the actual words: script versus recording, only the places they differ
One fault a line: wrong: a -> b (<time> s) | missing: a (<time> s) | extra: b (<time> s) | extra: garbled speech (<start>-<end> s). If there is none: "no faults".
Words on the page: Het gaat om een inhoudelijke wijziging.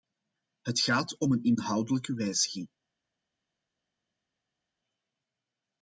no faults